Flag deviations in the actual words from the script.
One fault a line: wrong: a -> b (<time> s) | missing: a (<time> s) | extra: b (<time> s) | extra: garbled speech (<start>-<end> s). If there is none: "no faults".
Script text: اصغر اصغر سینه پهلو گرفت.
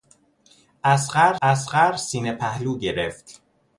no faults